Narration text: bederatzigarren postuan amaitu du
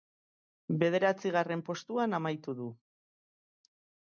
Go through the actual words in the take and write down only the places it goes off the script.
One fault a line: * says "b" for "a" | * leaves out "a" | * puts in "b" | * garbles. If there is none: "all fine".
all fine